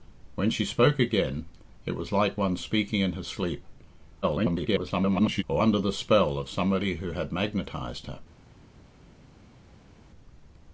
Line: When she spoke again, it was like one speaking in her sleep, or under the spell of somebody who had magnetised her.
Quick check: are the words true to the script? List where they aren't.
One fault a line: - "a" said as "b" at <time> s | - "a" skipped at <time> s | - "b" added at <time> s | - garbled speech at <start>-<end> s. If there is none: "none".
- garbled speech at 4.2-5.4 s